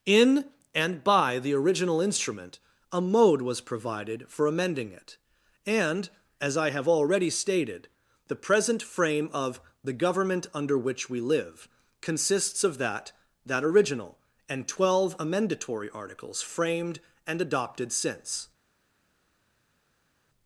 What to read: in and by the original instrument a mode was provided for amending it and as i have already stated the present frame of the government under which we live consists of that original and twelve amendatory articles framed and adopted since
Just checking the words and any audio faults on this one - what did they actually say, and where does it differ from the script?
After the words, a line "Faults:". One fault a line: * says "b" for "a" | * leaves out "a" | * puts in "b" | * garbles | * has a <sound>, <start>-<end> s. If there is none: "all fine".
in and by the original instrument a mode was provided for amending it and as i have already stated the present frame of the government under which we live consists of that that original and twelve amendatory articles framed and adopted since
Faults:
* puts in "that"